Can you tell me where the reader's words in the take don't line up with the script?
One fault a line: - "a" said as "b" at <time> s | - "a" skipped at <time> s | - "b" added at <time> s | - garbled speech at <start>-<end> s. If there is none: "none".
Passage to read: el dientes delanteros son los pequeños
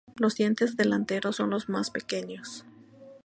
- "el" said as "los" at 0.2 s
- "más" added at 1.7 s